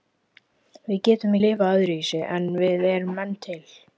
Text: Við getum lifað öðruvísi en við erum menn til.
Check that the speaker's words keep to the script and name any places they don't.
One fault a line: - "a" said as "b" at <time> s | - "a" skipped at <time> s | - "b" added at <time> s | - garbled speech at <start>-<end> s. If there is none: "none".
none